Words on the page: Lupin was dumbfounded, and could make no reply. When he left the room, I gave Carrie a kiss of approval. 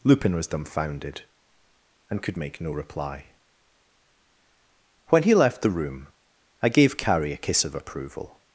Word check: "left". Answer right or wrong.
right